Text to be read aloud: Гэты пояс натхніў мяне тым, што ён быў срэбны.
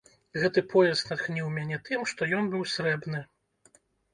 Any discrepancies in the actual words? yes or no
no